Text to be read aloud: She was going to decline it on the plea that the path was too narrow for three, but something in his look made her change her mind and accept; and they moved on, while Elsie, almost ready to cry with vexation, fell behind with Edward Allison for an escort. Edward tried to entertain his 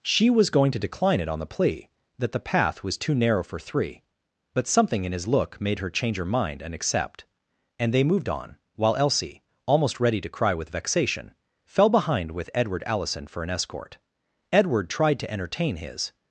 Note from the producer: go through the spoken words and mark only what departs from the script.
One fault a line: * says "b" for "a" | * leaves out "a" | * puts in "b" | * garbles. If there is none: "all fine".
all fine